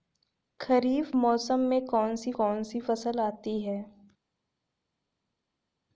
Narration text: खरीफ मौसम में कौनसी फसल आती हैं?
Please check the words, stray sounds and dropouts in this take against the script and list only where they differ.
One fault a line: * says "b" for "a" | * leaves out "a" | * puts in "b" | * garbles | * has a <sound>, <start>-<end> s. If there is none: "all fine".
* puts in "कौनसी"